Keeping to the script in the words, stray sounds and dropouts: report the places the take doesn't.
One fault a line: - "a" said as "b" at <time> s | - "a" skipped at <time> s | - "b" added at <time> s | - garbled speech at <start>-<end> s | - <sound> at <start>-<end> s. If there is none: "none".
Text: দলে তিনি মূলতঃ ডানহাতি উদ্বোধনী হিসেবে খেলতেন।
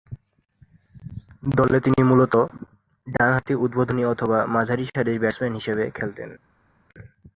- "অথবা মাঝারিসারির ব্যাটসম্যান" added at 4.0 s